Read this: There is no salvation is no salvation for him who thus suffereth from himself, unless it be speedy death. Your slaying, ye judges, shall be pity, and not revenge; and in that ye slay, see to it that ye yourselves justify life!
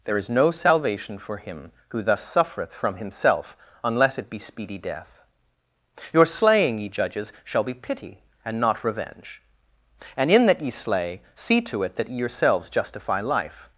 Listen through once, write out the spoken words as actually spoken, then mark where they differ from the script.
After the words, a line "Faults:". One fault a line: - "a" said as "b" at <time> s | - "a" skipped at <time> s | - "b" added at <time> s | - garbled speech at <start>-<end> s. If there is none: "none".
There is no salvation for him who thus suffereth from himself, unless it be speedy death. Your slaying, ye judges, shall be pity, and not revenge; and in that ye slay, see to it that ye yourselves justify life!
Faults:
- "is no salvation" skipped at 1.2 s